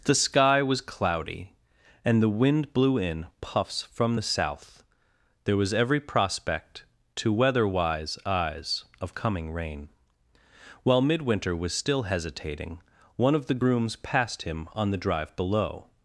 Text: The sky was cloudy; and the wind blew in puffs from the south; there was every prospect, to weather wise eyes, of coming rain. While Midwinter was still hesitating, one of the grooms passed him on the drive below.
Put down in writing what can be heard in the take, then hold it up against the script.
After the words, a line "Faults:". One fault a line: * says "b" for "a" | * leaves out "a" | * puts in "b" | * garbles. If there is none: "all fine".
The sky was cloudy; and the wind blew in puffs from the south; there was every prospect, to weather wise eyes, of coming rain. While Midwinter was still hesitating, one of the grooms passed him on the drive below.
Faults:
all fine